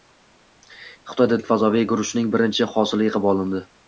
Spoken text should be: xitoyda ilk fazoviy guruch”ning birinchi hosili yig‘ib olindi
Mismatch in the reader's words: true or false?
false